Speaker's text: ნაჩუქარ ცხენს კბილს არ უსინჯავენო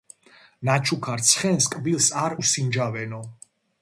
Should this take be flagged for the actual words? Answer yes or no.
no